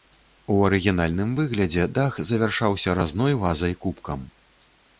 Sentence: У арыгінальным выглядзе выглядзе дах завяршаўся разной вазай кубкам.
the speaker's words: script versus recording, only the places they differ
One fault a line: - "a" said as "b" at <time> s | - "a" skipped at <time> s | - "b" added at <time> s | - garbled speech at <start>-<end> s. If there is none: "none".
- "выглядзе" skipped at 1.8 s